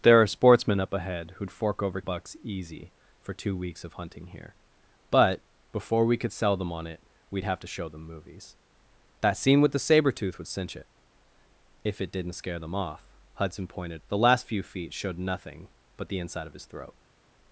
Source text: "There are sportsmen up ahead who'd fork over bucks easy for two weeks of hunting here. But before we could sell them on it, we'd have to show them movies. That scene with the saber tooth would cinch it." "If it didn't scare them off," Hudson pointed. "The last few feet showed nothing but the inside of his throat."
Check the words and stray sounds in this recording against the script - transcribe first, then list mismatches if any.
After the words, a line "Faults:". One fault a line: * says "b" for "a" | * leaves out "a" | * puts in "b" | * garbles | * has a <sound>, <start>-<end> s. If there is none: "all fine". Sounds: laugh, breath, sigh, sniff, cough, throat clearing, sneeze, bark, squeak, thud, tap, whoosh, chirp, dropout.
"There are sportsmen up ahead who'd fork over bucks easy for two weeks of hunting here. But before we could sell them on it, we'd have to show them movies. That scene with the saber tooth would cinch it." "If it didn't scare them off," Hudson pointed. "The last few feet showed nothing but the inside of his throat."
Faults:
all fine